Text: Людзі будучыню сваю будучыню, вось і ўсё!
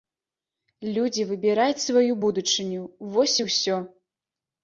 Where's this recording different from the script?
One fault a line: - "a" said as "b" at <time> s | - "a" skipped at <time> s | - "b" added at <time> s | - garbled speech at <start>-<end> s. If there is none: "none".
- "будучыню" said as "выбіраюць" at 1.3 s